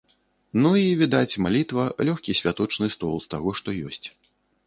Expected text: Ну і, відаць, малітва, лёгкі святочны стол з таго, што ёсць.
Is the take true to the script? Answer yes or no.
yes